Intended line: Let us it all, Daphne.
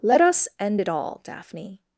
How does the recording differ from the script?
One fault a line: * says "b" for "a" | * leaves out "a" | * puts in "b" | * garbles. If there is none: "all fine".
* puts in "end"